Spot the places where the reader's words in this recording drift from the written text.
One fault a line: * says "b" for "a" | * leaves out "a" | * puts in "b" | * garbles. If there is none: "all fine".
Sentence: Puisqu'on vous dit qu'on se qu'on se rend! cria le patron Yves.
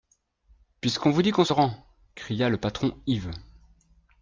* leaves out "qu'on se"